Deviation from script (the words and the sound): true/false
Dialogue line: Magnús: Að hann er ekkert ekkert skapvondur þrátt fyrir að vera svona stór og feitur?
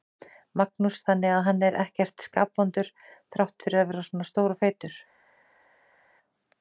true